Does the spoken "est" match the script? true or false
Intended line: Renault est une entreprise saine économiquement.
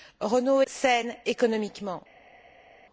false